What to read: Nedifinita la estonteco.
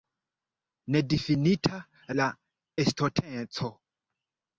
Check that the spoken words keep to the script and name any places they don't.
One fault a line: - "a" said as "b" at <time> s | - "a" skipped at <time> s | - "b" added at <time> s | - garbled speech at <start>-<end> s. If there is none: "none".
none